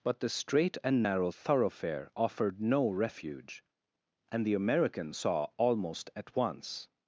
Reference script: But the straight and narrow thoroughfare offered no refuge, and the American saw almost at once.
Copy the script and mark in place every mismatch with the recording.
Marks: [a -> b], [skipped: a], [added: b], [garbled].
But the straight and narrow thoroughfare offered no refuge, and the American saw almost at once.